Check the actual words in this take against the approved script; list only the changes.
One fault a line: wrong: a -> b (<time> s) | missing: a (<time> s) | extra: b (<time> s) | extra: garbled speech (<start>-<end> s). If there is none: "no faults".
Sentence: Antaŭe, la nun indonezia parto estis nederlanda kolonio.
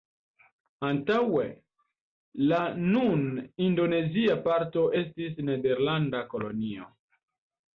no faults